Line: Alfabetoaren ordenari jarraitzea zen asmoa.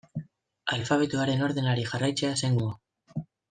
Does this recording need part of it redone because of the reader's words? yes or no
no